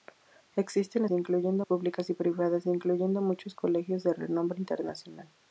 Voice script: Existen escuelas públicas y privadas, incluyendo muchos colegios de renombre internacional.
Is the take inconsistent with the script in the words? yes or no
yes